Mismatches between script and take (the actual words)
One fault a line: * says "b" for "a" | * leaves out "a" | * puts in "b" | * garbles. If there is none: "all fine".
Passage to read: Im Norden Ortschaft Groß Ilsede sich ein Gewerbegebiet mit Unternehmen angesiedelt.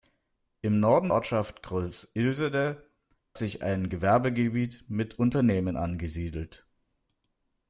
all fine